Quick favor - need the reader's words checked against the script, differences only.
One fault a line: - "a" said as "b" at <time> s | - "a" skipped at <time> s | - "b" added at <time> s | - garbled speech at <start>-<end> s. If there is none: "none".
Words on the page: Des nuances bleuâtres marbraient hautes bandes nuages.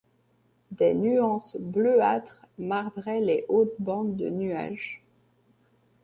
- "les" added at 3.2 s
- "de" added at 4.2 s